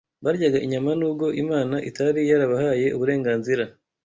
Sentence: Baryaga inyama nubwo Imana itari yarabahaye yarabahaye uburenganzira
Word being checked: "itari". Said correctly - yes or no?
yes